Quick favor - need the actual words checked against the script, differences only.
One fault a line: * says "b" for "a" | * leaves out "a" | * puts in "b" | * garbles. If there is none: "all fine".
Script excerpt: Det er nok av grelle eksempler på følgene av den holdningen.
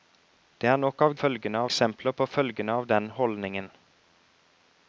* says "følgene" for "grelle"